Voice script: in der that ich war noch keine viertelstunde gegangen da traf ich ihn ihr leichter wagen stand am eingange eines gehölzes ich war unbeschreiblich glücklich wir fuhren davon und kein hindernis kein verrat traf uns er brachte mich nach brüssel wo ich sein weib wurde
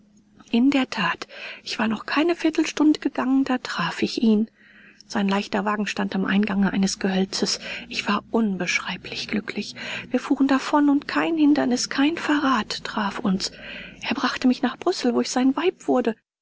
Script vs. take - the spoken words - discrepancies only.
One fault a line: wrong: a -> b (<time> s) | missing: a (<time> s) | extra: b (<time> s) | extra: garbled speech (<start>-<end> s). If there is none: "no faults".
wrong: ihr -> sein (5.1 s)